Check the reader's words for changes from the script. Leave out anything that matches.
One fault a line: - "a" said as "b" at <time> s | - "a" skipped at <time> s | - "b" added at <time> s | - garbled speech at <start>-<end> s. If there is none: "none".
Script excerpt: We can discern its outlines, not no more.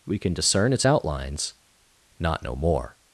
none